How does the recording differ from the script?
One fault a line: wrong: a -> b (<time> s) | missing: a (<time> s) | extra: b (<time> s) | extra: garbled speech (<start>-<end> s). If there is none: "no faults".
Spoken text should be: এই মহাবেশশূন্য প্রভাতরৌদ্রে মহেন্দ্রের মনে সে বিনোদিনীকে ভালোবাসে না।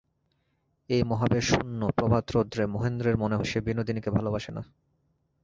no faults